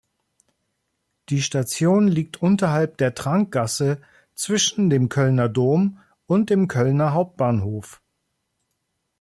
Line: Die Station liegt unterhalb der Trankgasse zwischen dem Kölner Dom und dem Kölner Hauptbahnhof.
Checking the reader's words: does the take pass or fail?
pass